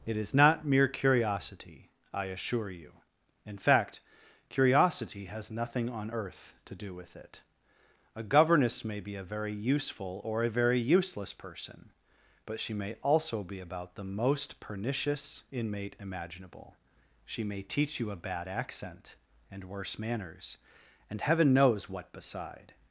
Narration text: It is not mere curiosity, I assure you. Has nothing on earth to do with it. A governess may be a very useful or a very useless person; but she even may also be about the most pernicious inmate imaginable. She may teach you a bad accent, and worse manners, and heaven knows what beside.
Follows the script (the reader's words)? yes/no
no